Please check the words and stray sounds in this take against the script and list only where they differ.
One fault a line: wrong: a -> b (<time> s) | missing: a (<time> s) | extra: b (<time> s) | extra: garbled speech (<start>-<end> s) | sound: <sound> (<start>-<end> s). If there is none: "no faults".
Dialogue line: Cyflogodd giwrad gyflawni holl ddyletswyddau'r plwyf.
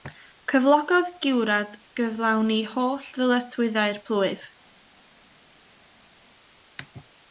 no faults